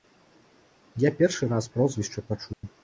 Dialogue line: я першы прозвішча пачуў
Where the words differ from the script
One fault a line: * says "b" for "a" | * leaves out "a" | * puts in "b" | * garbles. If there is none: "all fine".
* puts in "раз"